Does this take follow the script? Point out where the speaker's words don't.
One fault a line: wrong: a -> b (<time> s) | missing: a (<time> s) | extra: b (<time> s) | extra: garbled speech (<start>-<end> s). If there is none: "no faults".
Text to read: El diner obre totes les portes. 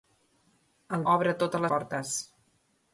missing: diner (1.1 s)
missing: les (1.7 s)